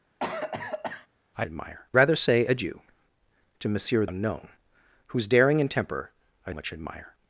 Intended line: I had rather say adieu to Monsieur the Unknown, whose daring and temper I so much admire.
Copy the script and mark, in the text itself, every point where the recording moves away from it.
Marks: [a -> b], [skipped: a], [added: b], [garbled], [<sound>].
[cough] I [had -> admire] rather say adieu to Monsieur [skipped: the] Unknown, whose daring and temper I [skipped: so] much admire.